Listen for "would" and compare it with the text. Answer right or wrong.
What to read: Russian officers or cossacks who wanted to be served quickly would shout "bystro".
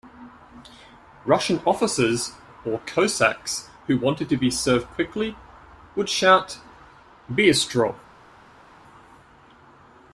right